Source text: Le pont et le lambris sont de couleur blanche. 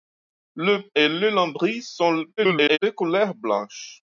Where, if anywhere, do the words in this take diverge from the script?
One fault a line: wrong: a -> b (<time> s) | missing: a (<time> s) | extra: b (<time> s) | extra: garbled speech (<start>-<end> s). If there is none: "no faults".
missing: pont (0.8 s)
extra: garbled speech (2.4-2.8 s)